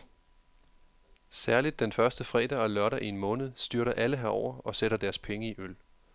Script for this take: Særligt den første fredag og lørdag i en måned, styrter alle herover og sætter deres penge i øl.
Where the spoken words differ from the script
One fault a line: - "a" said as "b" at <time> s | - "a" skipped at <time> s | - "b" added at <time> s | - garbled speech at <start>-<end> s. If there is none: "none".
none